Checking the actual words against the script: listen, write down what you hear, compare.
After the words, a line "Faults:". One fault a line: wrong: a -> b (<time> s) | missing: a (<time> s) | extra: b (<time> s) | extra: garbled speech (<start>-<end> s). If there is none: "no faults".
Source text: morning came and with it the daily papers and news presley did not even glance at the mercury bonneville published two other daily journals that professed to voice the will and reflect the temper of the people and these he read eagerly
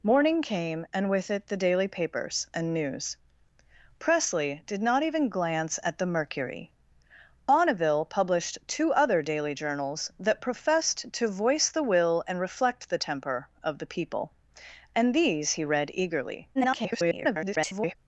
morning came and with it the daily papers and news presley did not even glance at the mercury bonneville published two other daily journals that professed to voice the will and reflect the temper of the people and these he read eagerly [garbled]
Faults:
extra: garbled speech (16.5-18.0 s)